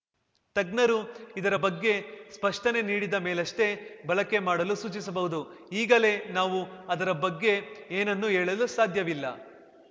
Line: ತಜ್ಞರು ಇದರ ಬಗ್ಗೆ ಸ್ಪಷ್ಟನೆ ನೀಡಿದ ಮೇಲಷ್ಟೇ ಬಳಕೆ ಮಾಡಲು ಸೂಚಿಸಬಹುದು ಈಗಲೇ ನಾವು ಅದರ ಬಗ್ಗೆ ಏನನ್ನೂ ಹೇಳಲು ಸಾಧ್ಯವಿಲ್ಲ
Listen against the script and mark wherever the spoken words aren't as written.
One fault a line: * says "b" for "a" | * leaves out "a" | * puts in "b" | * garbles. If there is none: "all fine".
all fine